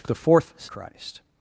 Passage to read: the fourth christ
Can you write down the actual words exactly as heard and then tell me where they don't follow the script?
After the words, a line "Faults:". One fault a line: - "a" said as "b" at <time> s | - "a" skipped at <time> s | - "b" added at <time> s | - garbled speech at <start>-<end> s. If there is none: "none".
the fourth christ
Faults:
none